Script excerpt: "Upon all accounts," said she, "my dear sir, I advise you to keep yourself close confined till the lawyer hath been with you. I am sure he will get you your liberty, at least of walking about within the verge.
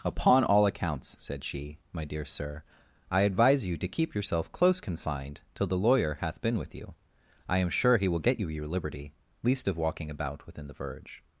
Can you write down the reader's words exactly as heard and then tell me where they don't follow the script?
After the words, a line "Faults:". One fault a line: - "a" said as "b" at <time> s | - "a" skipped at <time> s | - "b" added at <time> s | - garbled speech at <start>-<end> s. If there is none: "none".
"Upon all accounts," said she, "my dear sir, I advise you to keep yourself close confined till the lawyer hath been with you. I am sure he will get you your liberty, least of walking about within the verge.
Faults:
- "at" skipped at 9.1 s